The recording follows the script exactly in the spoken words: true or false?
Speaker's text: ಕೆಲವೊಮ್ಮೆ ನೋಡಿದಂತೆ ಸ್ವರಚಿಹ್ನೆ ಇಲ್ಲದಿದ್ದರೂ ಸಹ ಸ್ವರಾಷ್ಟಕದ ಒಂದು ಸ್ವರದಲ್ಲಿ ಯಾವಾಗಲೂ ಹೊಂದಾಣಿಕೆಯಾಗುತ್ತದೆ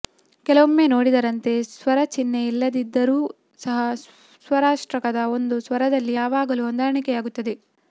true